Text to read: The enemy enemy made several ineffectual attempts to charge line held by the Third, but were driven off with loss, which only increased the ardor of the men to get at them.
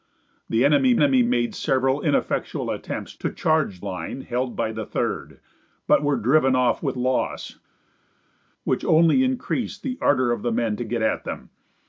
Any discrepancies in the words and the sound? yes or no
no